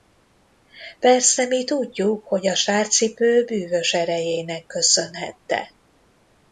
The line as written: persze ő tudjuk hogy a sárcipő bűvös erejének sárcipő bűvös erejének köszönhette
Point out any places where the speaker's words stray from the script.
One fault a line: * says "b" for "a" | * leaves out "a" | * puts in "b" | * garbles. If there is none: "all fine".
* says "mi" for "ő"
* leaves out "sárcipő bűvös erejének"